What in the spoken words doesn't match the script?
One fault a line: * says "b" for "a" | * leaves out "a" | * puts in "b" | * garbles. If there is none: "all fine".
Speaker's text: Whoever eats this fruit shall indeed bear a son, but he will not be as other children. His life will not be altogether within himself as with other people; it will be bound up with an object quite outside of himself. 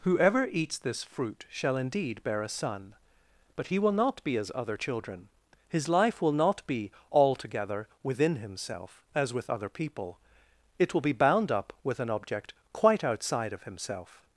all fine